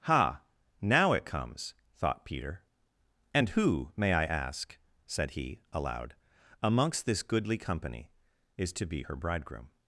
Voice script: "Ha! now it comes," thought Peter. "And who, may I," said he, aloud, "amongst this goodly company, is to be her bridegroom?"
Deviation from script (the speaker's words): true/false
true